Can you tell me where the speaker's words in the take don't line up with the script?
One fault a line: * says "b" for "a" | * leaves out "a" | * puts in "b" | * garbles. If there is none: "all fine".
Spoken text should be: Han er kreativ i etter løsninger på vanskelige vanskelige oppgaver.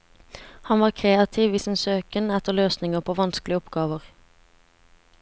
* says "var" for "er"
* puts in "sin søken"
* leaves out "vanskelige"